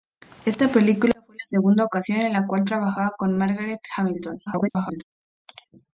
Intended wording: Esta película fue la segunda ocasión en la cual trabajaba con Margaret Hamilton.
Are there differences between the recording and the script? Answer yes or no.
yes